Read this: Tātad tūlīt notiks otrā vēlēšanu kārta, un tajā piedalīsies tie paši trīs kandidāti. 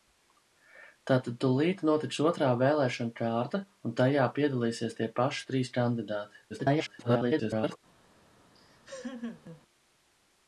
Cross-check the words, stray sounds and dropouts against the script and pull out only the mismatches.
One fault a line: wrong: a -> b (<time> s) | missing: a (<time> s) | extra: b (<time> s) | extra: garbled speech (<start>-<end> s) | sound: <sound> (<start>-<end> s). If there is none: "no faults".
extra: garbled speech (6.5-7.8 s)
sound: laugh (8.5-9.6 s)